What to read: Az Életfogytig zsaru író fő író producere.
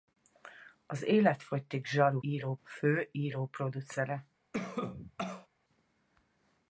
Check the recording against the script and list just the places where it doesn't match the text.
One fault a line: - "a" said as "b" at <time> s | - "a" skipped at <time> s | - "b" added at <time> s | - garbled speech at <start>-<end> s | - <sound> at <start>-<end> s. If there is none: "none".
- cough at 4.5-5.5 s